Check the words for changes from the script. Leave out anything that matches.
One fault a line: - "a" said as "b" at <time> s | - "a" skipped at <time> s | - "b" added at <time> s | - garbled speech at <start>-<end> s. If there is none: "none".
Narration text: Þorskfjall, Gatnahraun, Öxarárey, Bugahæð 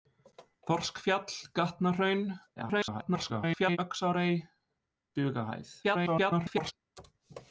- garbled speech at 2.6-3.8 s
- garbled speech at 5.8-6.7 s